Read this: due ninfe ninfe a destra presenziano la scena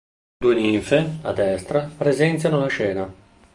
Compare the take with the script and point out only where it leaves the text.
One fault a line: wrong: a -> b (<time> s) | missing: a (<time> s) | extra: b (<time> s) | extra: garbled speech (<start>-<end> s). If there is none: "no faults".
missing: ninfe (1.2 s)